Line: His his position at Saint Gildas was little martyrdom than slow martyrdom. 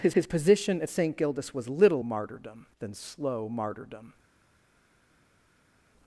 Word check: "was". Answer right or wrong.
right